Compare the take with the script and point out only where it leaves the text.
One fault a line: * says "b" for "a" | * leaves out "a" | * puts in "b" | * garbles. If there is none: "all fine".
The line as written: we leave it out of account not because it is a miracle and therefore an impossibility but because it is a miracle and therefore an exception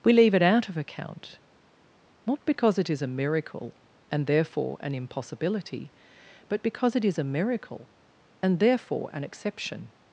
all fine